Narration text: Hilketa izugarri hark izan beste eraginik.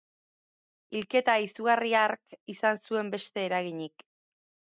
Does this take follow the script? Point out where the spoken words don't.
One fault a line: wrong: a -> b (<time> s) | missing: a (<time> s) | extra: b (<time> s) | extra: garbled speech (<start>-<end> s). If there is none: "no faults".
extra: zuen (2.9 s)